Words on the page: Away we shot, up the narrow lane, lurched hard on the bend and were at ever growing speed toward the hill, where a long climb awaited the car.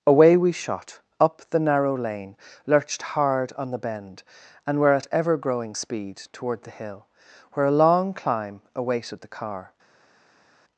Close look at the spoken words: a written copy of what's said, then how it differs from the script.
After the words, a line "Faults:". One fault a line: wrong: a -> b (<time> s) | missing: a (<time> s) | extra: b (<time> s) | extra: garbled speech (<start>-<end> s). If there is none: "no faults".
Away we shot, up the narrow lane, lurched hard on the bend and were at ever growing speed toward the hill, where a long climb awaited the car.
Faults:
no faults